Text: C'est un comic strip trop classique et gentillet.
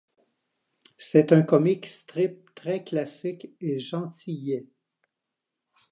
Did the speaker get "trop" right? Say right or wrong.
wrong